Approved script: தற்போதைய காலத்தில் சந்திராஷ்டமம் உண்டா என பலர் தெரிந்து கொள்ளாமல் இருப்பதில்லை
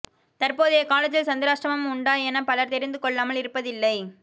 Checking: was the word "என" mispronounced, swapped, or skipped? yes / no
no